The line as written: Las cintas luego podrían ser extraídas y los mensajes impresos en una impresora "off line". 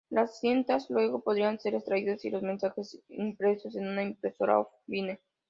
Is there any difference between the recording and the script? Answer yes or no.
no